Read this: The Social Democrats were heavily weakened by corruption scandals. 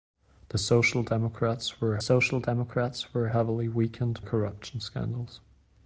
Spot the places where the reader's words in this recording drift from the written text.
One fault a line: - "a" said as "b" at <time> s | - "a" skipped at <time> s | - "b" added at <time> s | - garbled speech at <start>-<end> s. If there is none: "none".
- "Social Democrats were" added at 2.0 s
- "by" skipped at 4.2 s